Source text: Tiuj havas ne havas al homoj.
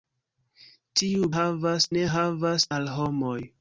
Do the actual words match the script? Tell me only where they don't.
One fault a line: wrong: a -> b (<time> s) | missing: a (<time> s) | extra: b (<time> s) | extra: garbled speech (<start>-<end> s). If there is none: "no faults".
no faults